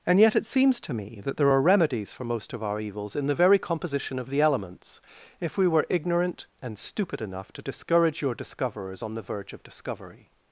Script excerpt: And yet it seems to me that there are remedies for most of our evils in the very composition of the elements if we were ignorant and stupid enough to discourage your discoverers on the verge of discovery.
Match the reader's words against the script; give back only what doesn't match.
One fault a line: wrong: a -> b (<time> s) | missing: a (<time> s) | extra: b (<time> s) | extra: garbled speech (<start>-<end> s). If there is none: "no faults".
no faults